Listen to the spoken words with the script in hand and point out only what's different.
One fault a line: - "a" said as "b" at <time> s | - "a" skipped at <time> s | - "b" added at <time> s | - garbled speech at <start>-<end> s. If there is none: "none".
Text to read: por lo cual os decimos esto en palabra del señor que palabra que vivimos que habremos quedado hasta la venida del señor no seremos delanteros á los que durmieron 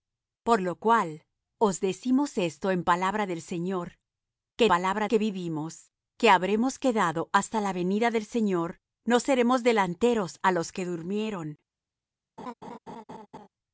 none